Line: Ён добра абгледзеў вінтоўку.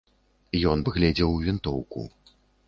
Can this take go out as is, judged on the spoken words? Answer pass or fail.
fail